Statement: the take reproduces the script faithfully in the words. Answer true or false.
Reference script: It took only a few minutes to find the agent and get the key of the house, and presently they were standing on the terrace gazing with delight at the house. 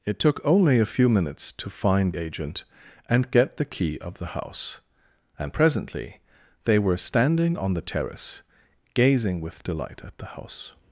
false